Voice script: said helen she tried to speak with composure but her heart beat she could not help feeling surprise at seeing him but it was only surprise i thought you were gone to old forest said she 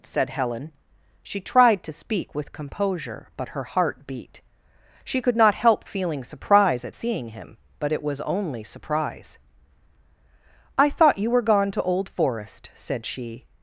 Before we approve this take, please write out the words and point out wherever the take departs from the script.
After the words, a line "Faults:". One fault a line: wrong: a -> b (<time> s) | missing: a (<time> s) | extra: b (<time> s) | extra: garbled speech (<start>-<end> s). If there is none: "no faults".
said helen she tried to speak with composure but her heart beat she could not help feeling surprise at seeing him but it was only surprise i thought you were gone to old forest said she
Faults:
no faults